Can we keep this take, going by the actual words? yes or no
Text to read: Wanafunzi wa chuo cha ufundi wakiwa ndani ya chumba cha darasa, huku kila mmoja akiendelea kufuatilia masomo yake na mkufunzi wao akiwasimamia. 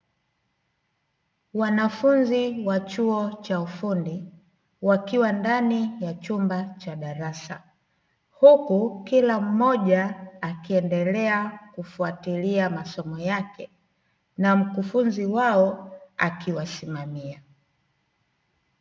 yes